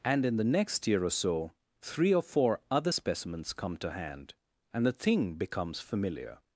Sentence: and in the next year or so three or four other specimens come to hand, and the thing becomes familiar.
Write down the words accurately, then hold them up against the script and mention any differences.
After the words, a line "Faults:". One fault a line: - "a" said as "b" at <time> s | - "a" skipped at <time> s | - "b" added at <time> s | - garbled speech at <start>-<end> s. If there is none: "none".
and in the next year or so three or four other specimens come to hand, and the thing becomes familiar.
Faults:
none